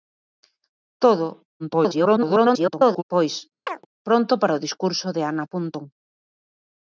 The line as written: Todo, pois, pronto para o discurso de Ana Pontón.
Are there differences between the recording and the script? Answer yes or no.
yes